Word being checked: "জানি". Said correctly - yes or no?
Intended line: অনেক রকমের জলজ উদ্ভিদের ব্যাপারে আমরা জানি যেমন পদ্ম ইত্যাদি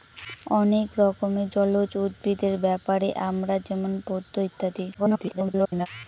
no